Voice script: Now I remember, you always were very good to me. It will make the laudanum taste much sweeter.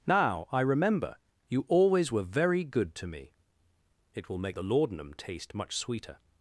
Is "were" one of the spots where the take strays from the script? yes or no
no